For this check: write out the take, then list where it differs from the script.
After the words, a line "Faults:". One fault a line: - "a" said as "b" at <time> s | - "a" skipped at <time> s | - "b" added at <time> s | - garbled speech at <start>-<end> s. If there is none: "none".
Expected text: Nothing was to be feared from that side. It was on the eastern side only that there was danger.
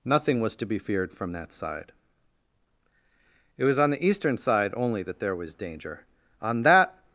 Nothing was to be feared from that side. It was on the eastern side only that there was danger. On that
Faults:
- "On that" added at 6.4 s